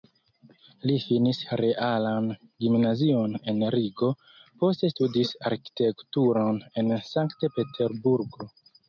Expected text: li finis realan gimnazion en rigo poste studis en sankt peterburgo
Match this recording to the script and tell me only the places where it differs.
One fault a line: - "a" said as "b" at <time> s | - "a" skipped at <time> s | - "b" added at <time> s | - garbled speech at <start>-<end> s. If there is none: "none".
- "arkitekturon" added at 5.5 s